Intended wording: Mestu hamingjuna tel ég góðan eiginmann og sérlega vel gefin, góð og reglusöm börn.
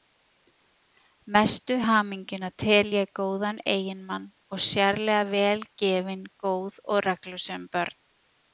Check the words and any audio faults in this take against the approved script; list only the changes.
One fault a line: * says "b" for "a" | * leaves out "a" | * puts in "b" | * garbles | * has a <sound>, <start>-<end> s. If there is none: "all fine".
all fine